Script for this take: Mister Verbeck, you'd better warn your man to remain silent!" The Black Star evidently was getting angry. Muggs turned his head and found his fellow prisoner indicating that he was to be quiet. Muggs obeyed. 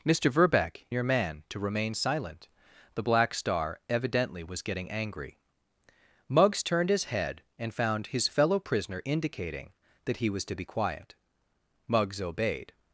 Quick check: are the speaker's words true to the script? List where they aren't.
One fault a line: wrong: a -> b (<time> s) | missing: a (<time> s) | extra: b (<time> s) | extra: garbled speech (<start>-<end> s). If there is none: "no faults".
missing: you'd better warn (0.9 s)